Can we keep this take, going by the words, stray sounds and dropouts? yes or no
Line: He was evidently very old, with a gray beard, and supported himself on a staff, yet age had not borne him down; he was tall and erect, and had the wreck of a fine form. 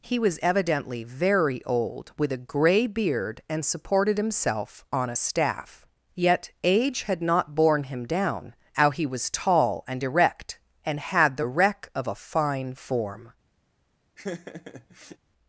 no